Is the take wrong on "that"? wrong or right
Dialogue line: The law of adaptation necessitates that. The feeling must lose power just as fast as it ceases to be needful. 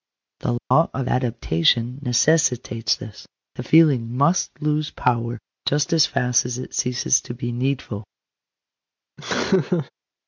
wrong